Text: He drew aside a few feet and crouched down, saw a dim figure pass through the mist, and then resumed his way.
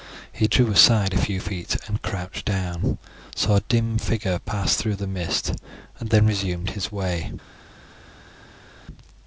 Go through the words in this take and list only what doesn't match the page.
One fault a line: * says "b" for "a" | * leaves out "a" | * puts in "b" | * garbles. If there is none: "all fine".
all fine